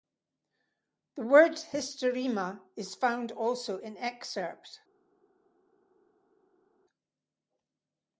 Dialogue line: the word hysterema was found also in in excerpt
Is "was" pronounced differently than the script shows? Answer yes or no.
yes